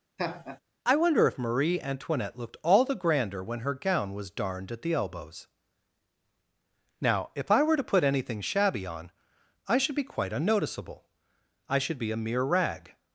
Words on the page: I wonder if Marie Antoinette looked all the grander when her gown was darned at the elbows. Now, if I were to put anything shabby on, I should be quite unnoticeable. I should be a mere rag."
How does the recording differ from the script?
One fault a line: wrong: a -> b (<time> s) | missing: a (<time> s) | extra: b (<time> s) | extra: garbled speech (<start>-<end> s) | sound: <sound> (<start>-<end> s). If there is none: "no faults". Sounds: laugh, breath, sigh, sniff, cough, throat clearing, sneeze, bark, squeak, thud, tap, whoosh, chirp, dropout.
sound: laugh (0.2-0.6 s)